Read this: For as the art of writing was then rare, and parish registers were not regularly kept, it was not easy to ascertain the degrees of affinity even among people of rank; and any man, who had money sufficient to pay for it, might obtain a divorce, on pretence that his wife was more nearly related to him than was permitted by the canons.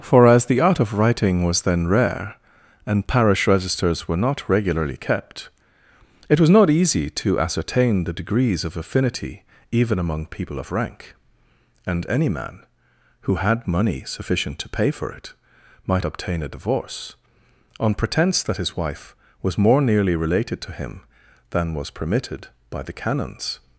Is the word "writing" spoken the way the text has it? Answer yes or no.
yes